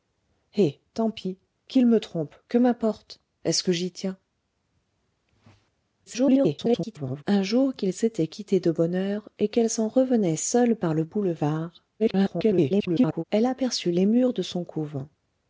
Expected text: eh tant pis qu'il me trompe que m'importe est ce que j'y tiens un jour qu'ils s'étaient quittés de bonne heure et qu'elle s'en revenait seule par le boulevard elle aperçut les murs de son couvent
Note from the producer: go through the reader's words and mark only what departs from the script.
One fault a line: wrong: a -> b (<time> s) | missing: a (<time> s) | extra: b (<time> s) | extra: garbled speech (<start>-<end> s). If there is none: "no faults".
extra: garbled speech (6.1-7.2 s)
extra: garbled speech (12.0-13.2 s)